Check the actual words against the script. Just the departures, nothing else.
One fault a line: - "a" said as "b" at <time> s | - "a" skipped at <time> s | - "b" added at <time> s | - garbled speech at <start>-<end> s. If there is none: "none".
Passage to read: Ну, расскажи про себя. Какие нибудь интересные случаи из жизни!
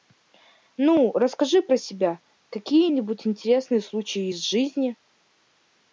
none